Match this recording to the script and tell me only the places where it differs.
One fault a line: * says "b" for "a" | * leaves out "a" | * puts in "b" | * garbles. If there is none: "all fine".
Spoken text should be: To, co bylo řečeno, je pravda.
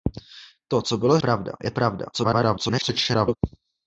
* says "pravda" for "řečeno"
* garbles